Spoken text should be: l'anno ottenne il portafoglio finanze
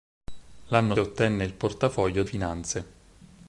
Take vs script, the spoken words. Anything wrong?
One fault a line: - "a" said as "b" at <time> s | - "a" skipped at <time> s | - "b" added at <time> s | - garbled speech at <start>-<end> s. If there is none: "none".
none